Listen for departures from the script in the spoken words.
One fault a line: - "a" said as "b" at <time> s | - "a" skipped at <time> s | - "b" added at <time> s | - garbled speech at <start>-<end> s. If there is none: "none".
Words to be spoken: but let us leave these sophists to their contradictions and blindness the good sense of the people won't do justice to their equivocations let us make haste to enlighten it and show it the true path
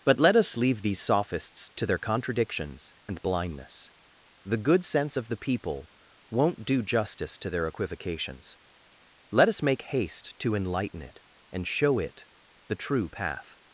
none